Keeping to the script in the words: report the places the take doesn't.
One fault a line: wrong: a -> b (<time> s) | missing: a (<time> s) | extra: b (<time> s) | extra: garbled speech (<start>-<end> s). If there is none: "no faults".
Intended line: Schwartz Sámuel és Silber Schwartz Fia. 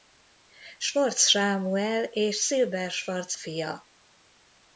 no faults